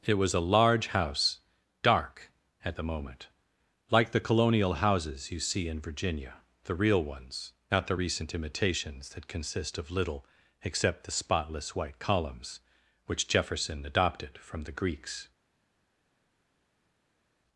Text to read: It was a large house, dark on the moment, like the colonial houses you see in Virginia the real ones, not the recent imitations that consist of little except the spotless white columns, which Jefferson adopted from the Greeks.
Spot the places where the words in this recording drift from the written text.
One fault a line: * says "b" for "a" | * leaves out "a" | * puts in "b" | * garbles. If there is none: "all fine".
* says "at" for "on"